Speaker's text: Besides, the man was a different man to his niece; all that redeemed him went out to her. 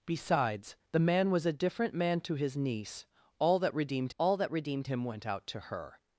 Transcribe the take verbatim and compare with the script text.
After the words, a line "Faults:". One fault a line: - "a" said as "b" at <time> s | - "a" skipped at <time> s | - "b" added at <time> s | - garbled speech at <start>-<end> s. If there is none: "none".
Besides, the man was a different man to his niece; all that redeemed all that redeemed him went out to her.
Faults:
- "all that redeemed" added at 4.2 s